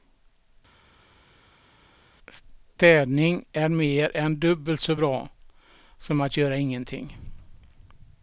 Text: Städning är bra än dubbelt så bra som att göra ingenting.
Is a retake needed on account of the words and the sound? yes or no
yes